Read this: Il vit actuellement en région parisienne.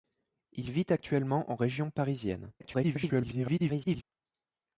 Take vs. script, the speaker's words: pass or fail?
fail